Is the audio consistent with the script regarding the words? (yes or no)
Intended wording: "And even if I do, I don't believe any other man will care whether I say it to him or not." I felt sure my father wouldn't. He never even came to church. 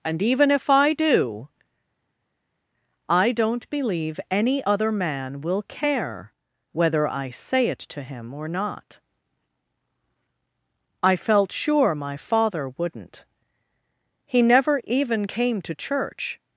yes